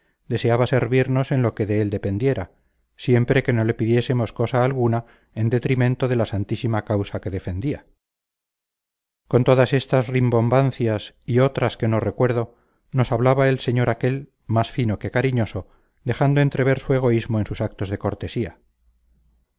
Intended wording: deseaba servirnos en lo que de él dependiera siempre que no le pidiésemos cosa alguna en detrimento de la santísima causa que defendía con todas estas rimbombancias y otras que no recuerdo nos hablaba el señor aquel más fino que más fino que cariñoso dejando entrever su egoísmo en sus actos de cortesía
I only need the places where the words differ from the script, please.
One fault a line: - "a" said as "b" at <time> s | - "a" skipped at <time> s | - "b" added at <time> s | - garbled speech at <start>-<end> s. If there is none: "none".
- "más fino que" skipped at 15.1 s